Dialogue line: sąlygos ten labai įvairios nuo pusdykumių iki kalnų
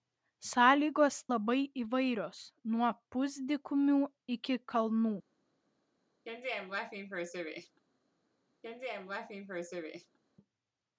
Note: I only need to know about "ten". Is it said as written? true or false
false